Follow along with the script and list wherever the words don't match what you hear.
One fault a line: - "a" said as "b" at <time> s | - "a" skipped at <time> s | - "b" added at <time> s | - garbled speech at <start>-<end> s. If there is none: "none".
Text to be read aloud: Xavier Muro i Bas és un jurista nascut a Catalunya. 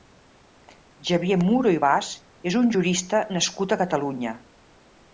none